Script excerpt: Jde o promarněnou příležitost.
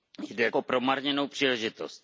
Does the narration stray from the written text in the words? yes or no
no